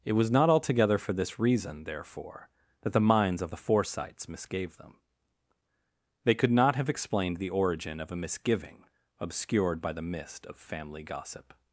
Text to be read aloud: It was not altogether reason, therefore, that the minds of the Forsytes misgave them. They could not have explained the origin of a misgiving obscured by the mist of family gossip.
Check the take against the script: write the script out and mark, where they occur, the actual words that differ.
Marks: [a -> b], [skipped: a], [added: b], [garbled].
It was not altogether [added: for this] reason, therefore, that the minds of the Forsytes misgave them. They could not have explained the origin of a misgiving obscured by the mist of family gossip.